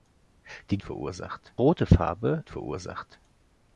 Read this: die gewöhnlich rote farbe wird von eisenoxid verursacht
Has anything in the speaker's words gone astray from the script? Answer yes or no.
yes